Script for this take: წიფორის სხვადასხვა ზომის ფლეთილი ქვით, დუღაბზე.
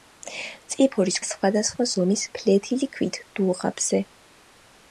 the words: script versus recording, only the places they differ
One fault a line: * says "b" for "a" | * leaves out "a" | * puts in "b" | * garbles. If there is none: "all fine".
all fine